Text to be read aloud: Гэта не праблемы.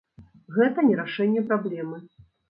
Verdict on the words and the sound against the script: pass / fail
fail